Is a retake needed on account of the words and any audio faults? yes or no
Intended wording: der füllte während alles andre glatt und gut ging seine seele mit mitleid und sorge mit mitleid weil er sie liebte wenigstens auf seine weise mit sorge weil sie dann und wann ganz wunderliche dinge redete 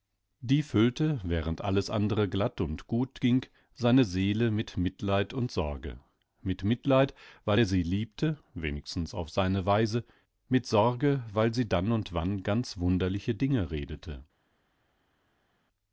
yes